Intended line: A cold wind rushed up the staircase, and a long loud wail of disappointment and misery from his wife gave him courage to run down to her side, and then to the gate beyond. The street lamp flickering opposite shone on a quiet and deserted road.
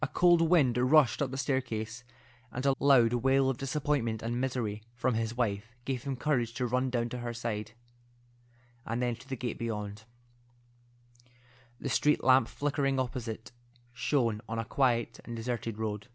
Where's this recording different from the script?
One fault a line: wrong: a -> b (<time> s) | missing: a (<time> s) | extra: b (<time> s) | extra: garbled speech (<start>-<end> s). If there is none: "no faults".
missing: long (2.7 s)